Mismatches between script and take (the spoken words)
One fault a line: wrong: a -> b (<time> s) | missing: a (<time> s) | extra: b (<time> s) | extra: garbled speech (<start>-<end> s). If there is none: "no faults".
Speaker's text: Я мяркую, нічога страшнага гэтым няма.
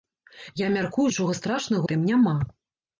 no faults